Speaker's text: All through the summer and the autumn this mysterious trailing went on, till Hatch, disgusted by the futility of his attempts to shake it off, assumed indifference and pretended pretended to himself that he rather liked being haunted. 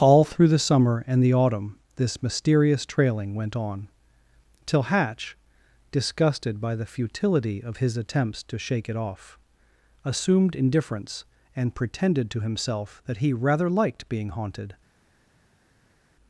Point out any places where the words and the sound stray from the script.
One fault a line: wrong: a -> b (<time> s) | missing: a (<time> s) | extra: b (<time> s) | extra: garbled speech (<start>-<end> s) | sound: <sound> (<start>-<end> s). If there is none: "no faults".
missing: pretended (12.3 s)